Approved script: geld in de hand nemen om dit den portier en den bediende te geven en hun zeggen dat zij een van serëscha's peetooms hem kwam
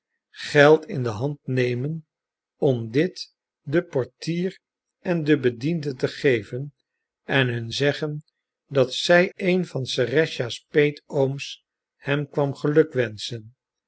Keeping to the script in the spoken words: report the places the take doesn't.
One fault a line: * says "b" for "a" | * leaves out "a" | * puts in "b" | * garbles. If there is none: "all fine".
all fine